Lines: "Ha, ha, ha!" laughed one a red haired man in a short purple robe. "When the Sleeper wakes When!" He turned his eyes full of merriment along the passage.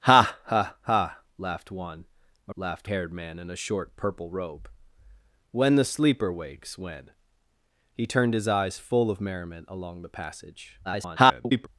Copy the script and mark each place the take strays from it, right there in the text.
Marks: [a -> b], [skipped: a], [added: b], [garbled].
"Ha, ha, ha!" laughed one a [red -> laughed] haired man in a short purple robe. "When the Sleeper wakes When!" He turned his eyes full of merriment along the passage. [garbled]